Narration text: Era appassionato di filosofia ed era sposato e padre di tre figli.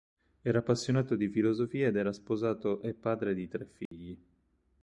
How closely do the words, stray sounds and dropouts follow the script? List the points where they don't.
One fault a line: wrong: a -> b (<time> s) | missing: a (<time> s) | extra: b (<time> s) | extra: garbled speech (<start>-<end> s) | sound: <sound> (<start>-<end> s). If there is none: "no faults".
sound: dropout (3.9-3.9 s)